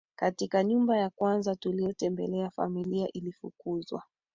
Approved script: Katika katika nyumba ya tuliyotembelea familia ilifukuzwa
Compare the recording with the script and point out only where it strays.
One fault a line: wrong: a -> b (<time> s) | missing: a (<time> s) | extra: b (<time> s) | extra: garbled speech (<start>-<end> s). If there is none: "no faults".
missing: katika (0.6 s)
extra: kwanza (1.1 s)